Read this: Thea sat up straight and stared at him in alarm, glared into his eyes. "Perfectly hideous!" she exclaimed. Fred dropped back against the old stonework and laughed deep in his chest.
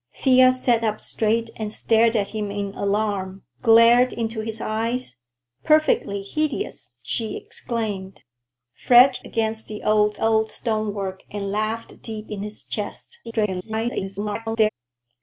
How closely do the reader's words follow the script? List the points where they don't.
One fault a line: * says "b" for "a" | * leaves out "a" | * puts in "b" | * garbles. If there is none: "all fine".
* leaves out "dropped back"
* puts in "old"
* garbles